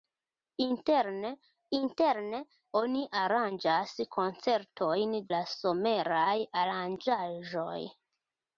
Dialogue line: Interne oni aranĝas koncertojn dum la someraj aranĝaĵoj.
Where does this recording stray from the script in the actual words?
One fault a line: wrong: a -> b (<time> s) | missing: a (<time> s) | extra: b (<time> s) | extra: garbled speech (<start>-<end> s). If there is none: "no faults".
extra: interne (1.8 s)
missing: dum (5.1 s)